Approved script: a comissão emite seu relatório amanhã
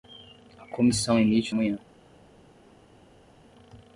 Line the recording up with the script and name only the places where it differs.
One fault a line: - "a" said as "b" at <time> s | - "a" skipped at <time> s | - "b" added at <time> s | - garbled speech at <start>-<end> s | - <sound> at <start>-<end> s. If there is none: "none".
- "seu relatório" skipped at 1.6 s